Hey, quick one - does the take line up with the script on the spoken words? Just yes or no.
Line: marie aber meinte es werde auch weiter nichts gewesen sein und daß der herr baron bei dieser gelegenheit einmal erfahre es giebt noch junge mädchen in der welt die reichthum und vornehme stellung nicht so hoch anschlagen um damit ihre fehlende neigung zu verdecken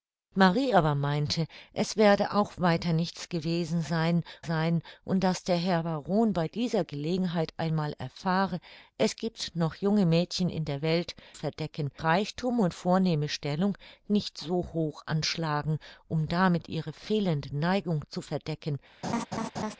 no